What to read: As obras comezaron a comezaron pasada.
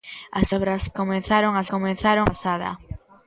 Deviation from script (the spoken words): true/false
false